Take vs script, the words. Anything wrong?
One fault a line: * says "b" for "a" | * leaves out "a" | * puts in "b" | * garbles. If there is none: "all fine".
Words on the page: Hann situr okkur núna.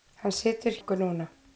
all fine